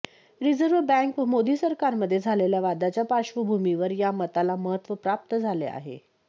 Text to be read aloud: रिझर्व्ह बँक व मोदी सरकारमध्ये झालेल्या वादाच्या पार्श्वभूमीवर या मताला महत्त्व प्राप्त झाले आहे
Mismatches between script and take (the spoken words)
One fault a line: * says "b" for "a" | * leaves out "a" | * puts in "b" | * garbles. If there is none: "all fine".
all fine